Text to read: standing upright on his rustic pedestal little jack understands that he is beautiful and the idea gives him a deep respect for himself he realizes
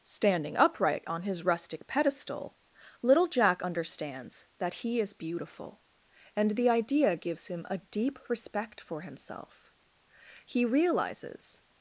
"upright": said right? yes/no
yes